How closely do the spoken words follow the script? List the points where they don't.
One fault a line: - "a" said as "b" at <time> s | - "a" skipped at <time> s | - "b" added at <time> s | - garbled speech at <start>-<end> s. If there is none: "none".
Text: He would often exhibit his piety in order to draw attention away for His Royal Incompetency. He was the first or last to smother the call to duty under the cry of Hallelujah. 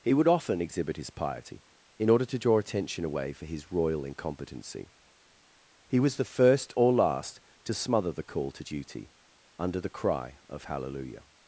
none